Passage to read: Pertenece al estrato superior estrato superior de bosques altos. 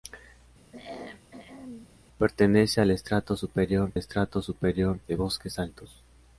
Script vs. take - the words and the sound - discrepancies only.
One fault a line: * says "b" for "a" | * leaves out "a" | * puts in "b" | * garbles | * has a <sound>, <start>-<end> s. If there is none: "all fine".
* has a throat clearing, 0.7-1.9 s